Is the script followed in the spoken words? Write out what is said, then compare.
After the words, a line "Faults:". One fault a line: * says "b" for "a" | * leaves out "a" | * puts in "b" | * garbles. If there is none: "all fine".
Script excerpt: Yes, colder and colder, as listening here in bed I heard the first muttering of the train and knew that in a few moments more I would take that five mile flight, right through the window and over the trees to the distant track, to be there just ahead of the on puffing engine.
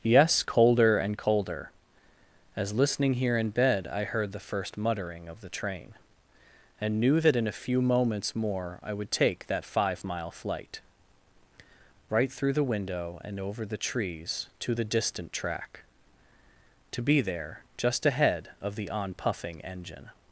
Yes, colder and colder, as listening here in bed I heard the first muttering of the train and knew that in a few moments more I would take that five mile flight, right through the window and over the trees to the distant track, to be there just ahead of the on puffing engine.
Faults:
all fine